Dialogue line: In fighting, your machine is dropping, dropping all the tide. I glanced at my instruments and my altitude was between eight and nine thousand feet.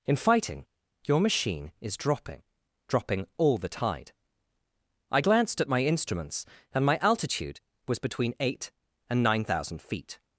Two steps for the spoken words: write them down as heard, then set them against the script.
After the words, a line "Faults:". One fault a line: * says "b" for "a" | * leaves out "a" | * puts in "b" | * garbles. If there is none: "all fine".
In fighting, your machine is dropping, dropping all the tide. I glanced at my instruments and my altitude was between eight and nine thousand feet.
Faults:
all fine